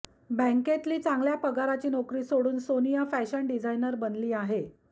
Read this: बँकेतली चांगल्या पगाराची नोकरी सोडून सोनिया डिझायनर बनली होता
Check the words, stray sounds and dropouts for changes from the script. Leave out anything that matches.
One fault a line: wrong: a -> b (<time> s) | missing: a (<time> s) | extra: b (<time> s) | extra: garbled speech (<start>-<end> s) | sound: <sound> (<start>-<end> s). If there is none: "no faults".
extra: फॅशन (3.1 s)
wrong: होता -> आहे (4.3 s)